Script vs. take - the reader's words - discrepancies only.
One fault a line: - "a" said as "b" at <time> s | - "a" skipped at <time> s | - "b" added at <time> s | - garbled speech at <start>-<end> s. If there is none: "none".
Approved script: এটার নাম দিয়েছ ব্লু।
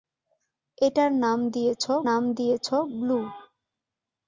- "নাম দিয়েছ" added at 2.1 s